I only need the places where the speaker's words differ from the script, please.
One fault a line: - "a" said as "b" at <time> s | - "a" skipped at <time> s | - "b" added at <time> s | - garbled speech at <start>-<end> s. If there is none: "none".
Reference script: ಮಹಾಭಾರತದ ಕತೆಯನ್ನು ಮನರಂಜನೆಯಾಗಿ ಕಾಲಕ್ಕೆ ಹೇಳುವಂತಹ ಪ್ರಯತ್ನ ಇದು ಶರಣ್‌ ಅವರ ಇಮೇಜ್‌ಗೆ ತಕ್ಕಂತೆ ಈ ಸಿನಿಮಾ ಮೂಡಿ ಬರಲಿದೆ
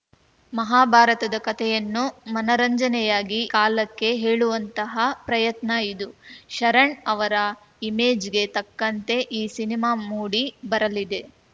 none